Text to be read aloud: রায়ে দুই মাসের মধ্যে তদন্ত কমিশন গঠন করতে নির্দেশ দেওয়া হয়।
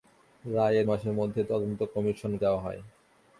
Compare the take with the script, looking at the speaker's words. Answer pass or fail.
fail